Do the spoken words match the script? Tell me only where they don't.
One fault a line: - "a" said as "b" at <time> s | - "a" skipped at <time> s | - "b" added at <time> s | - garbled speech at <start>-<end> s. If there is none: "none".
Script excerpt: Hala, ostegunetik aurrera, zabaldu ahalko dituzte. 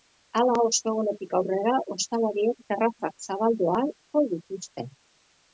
- "ostalariek terrazak" added at 2.0 s